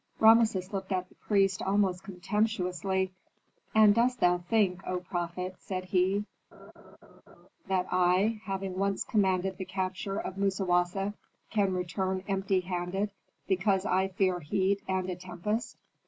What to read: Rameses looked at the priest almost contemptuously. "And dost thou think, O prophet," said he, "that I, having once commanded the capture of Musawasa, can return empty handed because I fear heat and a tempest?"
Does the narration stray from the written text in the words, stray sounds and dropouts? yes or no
yes